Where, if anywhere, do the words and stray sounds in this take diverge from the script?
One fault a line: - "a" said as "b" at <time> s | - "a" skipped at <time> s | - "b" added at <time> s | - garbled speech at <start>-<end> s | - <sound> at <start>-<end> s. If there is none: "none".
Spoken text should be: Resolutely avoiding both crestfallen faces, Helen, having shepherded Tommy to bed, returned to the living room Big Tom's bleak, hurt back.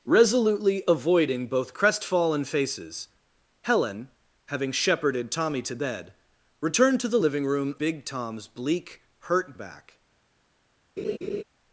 - laugh at 11.0-11.4 s